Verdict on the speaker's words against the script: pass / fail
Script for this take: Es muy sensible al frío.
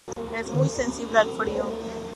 pass